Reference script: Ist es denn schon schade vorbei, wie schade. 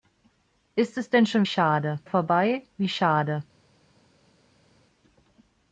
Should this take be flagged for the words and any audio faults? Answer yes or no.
no